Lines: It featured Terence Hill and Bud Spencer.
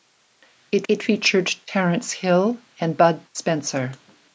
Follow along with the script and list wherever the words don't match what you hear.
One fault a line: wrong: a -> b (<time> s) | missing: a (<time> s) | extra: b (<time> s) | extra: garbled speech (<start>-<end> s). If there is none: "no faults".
extra: it (0.9 s)